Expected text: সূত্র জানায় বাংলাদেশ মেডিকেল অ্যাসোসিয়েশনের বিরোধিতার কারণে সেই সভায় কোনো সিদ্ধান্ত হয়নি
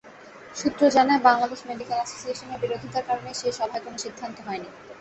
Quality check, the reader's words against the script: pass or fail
pass